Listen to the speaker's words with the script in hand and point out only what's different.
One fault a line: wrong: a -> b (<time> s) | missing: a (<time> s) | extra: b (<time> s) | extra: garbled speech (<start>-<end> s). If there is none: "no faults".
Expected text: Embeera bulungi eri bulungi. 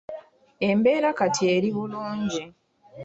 wrong: bulungi -> kati (1.2 s)